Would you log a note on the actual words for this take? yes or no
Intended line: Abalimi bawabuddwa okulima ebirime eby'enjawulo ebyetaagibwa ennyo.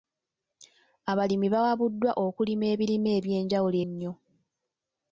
yes